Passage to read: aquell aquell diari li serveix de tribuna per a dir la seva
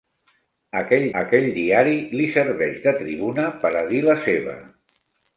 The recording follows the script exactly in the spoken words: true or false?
true